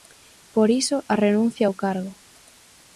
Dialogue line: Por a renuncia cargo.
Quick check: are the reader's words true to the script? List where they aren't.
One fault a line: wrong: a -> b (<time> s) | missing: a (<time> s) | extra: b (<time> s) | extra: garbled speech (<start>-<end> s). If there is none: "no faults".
extra: iso (0.8 s)
extra: ao (1.6 s)